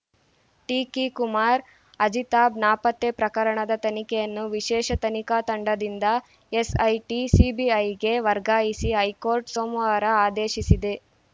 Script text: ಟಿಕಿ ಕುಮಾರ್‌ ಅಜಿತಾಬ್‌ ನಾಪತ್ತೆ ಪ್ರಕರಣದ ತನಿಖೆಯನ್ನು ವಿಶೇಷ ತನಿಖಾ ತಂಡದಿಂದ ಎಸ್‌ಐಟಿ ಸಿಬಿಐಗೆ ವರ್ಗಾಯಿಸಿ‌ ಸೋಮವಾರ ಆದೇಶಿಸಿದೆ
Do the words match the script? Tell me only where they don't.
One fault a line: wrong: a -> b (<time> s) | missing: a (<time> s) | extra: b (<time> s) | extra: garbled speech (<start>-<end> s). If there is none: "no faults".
extra: ಹೈಕೋರ್ಟ್ (9.0 s)